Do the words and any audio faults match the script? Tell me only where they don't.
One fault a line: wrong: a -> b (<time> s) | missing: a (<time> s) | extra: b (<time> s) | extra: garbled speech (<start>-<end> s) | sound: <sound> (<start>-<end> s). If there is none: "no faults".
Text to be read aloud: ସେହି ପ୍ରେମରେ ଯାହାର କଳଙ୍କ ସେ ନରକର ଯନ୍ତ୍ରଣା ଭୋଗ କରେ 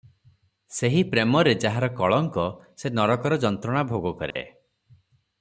sound: dropout (4.3-4.4 s)